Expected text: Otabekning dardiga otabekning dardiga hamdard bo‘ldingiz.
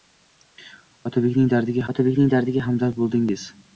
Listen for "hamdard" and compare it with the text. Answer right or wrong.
right